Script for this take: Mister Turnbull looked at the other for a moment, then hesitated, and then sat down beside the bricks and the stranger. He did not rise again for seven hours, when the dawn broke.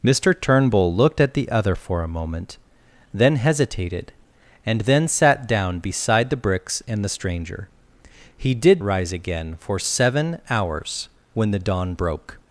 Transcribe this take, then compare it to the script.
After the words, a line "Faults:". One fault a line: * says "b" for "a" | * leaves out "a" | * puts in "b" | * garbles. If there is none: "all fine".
Mister Turnbull looked at the other for a moment, then hesitated, and then sat down beside the bricks and the stranger. He did rise again for seven hours, when the dawn broke.
Faults:
* leaves out "not"